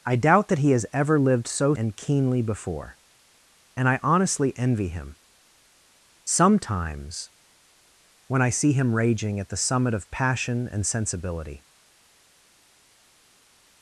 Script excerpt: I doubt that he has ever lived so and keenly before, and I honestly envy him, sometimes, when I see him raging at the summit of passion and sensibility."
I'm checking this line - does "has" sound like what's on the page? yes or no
yes